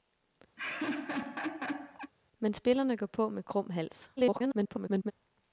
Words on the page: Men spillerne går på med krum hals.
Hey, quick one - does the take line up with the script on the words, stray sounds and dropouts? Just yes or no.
no